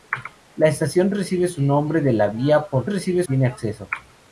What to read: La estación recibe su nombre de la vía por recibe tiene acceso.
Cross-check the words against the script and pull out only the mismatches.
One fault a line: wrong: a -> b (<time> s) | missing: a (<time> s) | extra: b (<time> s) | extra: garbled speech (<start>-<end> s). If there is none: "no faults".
no faults